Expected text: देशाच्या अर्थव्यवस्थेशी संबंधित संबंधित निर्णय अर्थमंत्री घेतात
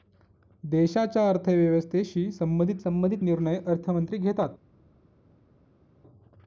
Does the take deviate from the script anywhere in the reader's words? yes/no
no